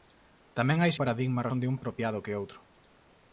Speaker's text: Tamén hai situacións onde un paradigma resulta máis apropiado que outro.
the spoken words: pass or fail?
fail